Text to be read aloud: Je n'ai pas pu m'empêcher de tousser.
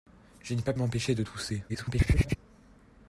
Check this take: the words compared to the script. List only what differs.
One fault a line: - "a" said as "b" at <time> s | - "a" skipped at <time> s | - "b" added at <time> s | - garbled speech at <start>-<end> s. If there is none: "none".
- "pu" skipped at 0.7 s
- garbled speech at 1.7-2.4 s